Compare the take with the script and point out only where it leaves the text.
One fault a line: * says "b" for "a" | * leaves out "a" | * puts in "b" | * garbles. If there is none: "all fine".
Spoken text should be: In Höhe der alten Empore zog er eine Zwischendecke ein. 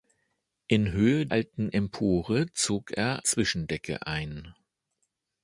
* leaves out "der"
* leaves out "eine"